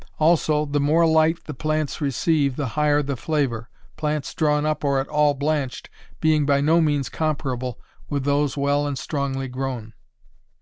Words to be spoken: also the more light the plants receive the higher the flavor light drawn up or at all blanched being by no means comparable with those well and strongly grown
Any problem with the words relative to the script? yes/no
yes